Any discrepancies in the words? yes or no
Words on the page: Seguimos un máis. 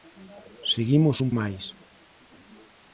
no